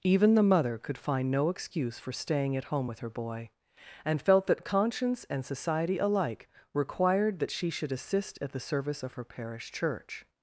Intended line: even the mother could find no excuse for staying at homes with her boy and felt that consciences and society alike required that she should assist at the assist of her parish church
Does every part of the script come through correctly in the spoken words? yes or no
no